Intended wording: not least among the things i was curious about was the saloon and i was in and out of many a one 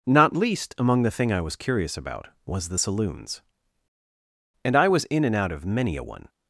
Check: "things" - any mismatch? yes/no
yes